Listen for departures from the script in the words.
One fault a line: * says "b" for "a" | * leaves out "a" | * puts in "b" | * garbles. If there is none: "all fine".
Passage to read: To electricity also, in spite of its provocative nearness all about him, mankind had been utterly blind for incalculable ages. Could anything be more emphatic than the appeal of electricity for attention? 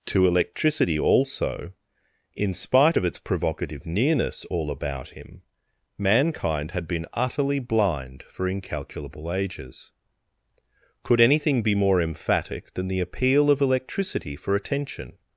all fine